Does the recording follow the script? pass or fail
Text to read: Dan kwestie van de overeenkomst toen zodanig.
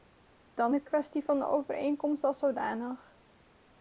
fail